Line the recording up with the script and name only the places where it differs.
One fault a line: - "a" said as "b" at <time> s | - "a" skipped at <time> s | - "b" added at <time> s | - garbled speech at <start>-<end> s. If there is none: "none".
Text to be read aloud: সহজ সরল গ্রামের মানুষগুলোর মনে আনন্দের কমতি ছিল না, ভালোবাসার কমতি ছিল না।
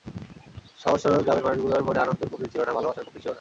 none